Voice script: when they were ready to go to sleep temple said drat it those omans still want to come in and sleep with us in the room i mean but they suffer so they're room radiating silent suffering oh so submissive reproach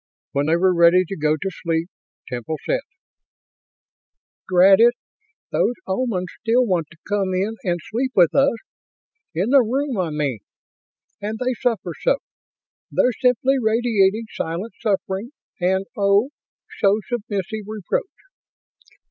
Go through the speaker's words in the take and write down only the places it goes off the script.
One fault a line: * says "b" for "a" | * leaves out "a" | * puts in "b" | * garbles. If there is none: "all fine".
* says "and" for "but"
* says "simply" for "room"
* puts in "and"